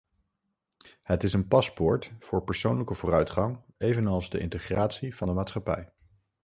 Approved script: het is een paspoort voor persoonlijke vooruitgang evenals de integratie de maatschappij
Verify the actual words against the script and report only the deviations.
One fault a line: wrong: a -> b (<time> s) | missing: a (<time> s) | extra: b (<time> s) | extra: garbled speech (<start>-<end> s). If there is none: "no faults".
extra: van (5.2 s)